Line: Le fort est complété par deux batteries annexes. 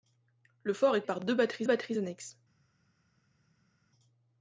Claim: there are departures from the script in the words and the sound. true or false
true